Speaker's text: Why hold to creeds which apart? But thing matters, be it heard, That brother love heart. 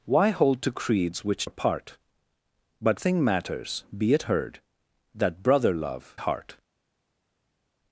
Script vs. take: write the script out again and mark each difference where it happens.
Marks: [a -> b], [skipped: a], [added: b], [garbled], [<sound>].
Why hold to creeds which apart? But thing matters, be it heard, That brother love heart.